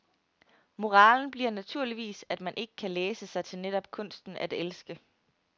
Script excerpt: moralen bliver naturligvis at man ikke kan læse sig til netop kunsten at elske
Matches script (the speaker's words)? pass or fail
pass